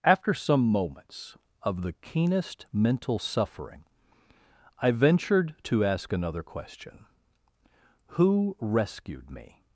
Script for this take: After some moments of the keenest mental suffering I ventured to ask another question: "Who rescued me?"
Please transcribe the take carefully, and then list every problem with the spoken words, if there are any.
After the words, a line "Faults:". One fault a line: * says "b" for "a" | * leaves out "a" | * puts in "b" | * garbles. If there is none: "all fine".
After some moments of the keenest mental suffering I ventured to ask another question: "Who rescued me?"
Faults:
all fine